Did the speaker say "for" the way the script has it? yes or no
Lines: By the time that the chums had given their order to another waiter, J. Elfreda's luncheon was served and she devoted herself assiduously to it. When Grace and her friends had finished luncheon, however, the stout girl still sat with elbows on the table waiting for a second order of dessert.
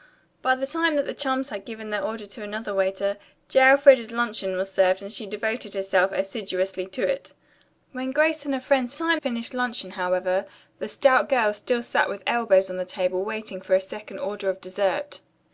yes